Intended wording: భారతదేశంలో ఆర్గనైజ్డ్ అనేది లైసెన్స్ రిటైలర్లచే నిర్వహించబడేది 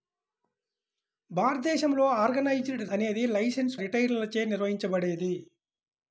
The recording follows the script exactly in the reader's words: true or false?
true